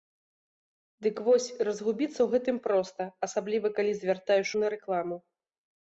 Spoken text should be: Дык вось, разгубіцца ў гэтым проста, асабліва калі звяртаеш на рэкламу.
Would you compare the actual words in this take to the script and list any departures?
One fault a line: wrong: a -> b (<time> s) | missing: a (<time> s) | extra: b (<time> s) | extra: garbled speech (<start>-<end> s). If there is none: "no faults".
no faults